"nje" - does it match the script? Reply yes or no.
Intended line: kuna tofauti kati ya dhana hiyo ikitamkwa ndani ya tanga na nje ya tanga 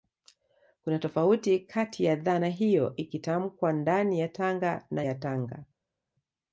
no